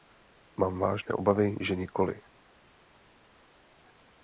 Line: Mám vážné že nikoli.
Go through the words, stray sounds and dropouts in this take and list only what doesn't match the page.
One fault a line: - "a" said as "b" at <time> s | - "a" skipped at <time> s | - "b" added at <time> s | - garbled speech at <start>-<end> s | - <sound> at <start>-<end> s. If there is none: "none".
- "obavy" added at 1.1 s